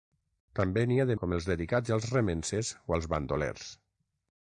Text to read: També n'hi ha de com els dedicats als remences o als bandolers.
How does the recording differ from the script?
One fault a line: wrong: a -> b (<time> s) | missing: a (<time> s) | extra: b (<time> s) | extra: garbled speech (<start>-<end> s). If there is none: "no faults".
no faults